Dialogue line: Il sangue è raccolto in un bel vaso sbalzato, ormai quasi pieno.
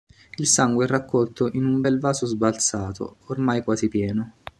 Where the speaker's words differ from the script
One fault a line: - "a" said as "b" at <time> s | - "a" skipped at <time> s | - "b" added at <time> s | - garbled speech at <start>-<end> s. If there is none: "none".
none